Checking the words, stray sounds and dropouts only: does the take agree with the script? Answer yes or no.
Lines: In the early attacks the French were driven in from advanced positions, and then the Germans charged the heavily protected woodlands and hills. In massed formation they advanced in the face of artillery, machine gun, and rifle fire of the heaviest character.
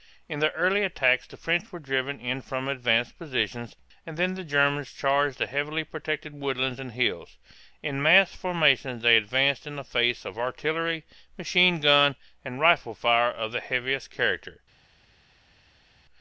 yes